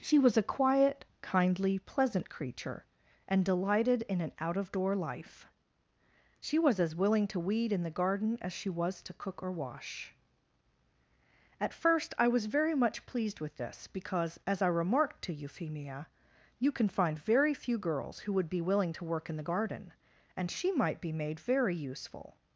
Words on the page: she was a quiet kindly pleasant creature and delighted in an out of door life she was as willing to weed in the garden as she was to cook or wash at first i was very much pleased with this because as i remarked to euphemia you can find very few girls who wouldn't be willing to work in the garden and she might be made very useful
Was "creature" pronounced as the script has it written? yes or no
yes